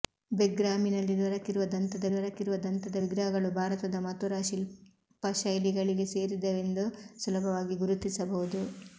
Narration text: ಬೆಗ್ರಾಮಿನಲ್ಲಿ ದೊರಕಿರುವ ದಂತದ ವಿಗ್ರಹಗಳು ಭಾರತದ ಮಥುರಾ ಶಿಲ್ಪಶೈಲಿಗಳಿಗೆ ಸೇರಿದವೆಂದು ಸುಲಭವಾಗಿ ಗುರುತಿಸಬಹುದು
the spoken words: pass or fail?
fail